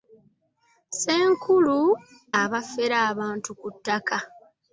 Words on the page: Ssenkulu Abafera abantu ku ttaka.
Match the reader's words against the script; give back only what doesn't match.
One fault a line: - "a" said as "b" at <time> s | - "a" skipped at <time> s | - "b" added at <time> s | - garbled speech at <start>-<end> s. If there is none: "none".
none